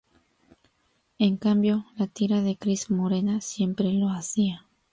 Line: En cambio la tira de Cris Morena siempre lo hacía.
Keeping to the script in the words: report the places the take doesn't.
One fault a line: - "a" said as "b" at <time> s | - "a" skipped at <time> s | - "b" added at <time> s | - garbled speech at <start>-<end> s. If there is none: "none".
none